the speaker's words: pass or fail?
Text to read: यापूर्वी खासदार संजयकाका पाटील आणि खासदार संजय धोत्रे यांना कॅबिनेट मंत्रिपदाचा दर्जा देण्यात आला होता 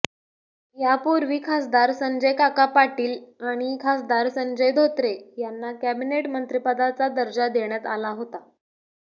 pass